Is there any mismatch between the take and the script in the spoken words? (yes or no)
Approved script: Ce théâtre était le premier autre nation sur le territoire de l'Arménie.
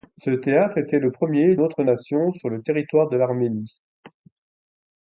no